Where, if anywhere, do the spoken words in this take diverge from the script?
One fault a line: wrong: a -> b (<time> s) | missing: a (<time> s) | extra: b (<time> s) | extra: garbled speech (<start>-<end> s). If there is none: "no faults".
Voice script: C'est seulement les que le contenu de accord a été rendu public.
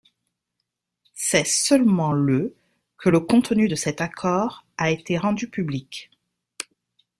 wrong: les -> le (2.1 s)
extra: cet (3.8 s)